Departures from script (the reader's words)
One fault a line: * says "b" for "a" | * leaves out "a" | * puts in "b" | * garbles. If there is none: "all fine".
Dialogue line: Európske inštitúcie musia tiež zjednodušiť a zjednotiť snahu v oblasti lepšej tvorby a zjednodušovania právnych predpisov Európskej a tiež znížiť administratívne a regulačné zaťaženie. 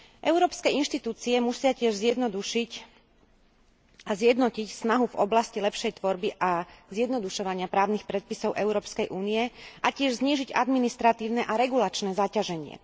* puts in "únie"